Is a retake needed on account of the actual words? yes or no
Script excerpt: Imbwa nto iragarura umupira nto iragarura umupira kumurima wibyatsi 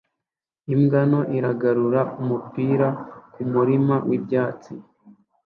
yes